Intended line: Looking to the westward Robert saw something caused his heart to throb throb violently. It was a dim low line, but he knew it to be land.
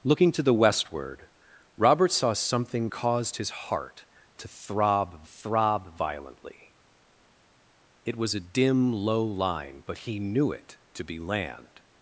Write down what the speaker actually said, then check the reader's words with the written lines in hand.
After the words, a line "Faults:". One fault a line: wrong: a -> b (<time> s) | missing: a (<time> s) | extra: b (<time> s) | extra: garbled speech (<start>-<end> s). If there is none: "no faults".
Looking to the westward Robert saw something caused his heart to throb throb violently. It was a dim low line, but he knew it to be land.
Faults:
no faults